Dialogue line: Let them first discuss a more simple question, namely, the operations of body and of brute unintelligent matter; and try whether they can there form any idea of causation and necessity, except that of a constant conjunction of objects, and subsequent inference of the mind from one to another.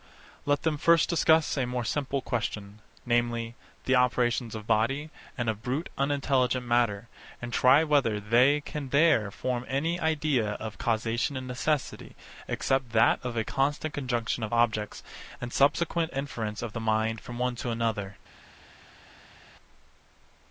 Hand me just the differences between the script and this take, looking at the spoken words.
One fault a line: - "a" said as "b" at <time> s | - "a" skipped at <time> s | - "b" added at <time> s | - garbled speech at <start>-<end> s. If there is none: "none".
none